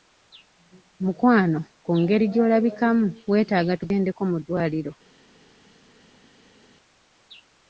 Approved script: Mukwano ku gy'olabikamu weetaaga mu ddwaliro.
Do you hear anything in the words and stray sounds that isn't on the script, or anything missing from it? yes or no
yes